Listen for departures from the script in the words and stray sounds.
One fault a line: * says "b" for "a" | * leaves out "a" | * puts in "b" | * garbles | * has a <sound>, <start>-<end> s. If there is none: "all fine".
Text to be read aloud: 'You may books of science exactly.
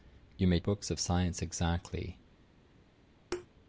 * has a thud, 3.3-3.5 s